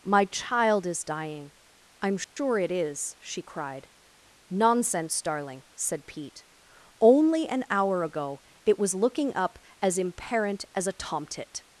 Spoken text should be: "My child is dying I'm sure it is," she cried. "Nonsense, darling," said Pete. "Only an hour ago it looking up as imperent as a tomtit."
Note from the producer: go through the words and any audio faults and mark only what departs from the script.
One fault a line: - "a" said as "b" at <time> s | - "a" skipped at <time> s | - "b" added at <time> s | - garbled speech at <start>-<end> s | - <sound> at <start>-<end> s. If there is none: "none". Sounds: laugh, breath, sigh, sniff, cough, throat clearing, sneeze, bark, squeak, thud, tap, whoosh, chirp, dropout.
- dropout at 2.2-2.4 s
- "was" added at 8.8 s